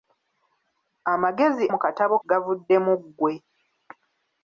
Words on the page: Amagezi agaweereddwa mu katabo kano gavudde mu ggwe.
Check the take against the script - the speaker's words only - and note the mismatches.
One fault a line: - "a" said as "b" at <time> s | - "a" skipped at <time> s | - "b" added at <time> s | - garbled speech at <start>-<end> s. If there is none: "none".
- "agaweereddwa" skipped at 1.6 s
- "kano" skipped at 2.2 s